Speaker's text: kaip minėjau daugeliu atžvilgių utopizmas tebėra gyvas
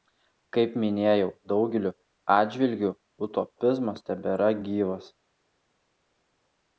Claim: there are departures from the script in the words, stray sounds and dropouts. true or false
false